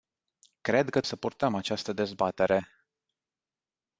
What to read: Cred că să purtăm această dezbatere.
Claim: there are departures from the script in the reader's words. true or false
false